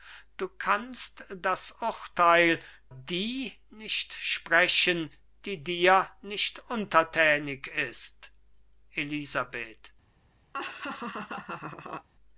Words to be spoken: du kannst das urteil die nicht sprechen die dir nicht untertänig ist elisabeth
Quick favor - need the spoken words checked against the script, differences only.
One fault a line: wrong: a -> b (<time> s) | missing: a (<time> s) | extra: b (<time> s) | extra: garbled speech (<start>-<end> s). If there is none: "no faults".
no faults